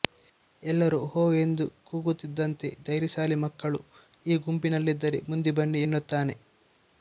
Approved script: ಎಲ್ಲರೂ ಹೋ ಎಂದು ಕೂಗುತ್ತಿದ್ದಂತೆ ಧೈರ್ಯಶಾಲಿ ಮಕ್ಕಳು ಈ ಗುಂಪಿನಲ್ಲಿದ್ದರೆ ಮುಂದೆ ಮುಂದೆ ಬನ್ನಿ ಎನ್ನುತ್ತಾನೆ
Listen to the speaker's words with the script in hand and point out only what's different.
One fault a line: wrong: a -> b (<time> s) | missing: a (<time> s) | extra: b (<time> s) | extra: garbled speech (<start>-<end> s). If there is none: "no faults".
missing: ಮುಂದೆ (5.5 s)